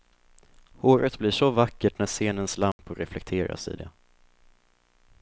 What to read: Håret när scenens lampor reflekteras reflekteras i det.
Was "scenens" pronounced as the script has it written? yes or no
yes